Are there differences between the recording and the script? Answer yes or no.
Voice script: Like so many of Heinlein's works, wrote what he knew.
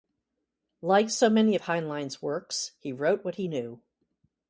yes